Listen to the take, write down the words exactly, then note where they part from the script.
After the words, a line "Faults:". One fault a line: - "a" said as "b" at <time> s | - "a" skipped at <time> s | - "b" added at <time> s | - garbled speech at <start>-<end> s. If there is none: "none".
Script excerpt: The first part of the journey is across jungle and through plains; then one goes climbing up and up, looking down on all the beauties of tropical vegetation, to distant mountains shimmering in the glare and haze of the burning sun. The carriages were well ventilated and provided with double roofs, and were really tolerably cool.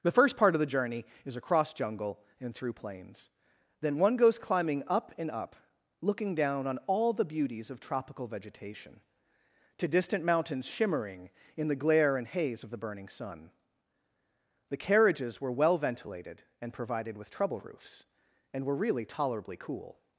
The first part of the journey is across jungle and through plains; then one goes climbing up and up, looking down on all the beauties of tropical vegetation, to distant mountains shimmering in the glare and haze of the burning sun. The carriages were well ventilated and provided with trouble roofs, and were really tolerably cool.
Faults:
- "double" said as "trouble" at 17.3 s